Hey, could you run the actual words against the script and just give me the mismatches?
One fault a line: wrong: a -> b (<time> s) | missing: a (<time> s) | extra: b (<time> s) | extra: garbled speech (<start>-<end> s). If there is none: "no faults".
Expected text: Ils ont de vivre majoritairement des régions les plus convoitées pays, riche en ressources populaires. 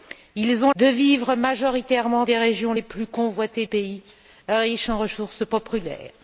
no faults